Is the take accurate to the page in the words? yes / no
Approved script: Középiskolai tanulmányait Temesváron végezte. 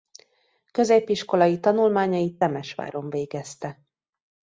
yes